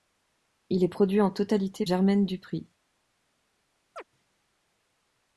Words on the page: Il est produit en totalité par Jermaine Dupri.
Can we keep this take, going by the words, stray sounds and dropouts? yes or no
no